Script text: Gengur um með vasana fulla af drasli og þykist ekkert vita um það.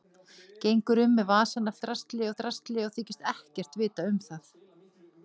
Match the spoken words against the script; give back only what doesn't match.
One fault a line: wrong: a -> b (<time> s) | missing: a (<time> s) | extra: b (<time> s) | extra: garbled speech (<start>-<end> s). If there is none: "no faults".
wrong: fulla -> drasli (1.9 s)